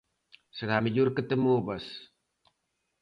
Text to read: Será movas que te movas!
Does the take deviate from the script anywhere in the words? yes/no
yes